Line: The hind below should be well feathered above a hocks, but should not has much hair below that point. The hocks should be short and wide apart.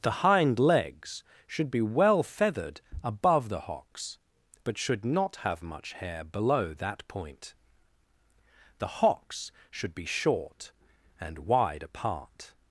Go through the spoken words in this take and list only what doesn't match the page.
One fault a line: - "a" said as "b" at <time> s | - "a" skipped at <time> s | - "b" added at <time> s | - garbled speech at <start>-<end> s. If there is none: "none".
- "below" said as "legs" at 0.6 s
- "a" said as "the" at 3.5 s
- "has" said as "have" at 5.4 s